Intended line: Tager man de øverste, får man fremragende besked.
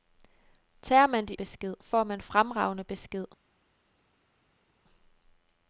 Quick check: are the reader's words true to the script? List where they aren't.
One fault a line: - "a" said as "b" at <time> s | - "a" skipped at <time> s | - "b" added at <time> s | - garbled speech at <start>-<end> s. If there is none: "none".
- "øverste" said as "besked" at 1.3 s